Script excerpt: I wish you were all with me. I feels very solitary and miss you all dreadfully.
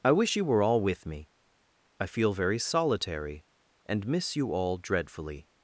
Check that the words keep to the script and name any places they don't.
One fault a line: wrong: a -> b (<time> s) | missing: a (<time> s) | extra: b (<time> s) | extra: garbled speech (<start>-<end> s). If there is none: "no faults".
wrong: feels -> feel (2.1 s)